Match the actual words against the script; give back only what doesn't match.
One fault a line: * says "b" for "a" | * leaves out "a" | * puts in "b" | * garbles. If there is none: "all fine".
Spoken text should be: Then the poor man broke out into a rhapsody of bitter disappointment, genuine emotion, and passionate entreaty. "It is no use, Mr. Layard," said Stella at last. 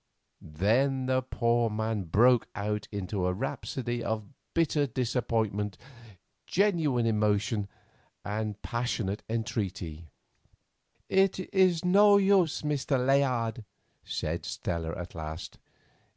all fine